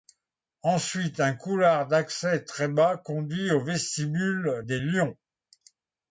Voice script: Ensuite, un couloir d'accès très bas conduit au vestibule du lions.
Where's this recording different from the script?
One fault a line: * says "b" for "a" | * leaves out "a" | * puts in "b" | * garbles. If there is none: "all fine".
* says "des" for "du"